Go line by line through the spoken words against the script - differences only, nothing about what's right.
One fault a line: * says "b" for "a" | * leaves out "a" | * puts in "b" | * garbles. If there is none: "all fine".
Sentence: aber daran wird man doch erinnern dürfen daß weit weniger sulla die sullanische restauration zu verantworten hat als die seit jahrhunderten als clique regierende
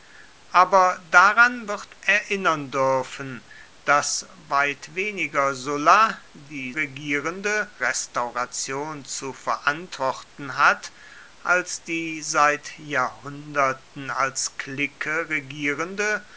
* leaves out "man doch"
* says "regierende" for "sullanische"